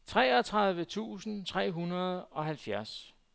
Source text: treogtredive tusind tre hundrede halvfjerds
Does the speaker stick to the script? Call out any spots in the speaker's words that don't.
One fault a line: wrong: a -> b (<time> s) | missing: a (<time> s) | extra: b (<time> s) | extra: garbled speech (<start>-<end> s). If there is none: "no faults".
extra: og (2.2 s)